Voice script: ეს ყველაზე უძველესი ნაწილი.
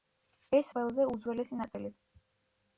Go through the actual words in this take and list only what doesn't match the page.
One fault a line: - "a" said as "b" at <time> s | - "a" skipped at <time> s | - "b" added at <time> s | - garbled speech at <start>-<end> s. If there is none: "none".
none